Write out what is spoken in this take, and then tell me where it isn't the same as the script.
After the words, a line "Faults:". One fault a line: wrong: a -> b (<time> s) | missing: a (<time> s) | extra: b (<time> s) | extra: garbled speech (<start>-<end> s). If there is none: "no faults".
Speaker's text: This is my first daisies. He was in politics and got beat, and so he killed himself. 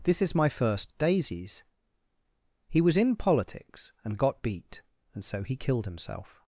This is my first daisies. He was in politics and got beat, and so he killed himself.
Faults:
no faults